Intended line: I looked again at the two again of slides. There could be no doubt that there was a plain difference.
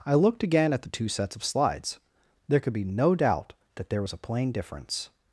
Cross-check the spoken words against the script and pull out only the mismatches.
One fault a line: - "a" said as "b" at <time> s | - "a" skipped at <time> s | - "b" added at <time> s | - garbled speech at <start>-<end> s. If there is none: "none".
- "again" said as "sets" at 1.1 s